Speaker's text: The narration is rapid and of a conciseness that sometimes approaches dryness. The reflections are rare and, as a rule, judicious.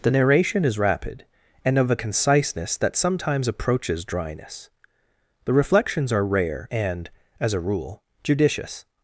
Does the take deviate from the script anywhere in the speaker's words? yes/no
no